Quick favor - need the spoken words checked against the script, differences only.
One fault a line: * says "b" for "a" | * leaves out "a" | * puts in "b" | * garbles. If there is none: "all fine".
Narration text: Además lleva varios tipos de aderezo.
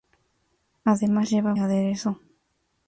* leaves out "varios tipos de"